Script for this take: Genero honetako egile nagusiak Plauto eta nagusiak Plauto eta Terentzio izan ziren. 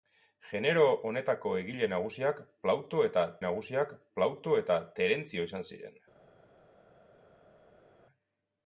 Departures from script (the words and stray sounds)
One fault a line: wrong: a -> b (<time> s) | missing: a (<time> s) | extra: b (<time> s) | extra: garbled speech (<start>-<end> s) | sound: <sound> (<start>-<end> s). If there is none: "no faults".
no faults